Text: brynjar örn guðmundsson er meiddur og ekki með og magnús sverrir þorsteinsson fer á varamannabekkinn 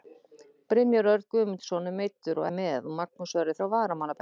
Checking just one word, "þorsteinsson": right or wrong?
wrong